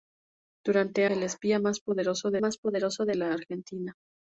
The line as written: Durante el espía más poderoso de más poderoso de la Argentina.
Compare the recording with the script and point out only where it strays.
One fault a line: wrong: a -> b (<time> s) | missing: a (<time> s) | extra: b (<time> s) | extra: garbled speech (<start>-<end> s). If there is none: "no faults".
no faults